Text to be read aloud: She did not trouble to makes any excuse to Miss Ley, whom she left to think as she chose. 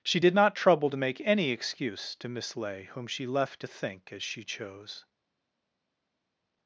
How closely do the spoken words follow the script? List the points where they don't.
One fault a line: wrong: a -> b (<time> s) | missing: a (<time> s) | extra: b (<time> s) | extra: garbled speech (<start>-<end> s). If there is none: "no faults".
wrong: makes -> make (1.0 s)